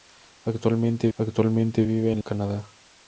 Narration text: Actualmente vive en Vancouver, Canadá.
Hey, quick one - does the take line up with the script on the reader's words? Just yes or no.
no